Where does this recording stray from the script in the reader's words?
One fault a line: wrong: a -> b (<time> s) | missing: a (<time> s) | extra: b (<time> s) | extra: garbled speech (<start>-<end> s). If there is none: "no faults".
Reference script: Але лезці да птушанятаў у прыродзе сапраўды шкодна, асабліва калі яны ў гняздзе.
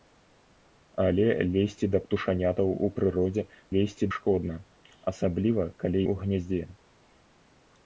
wrong: сапраўды -> лезці (3.7 s)
missing: яны (6.0 s)